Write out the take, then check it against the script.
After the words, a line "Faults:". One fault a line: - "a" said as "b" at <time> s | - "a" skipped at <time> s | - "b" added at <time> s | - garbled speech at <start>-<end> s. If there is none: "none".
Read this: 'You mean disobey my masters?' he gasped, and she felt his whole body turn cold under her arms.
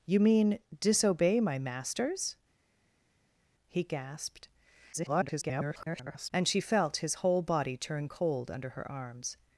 'You mean disobey my masters?' he gasped, [garbled] and she felt his whole body turn cold under her arms.
Faults:
- garbled speech at 4.9-6.3 s